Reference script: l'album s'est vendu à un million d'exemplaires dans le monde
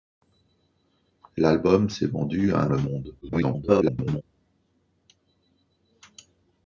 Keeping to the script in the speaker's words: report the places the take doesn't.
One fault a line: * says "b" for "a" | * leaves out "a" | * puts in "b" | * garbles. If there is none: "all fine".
* leaves out "million d'exemplaires dans"
* garbles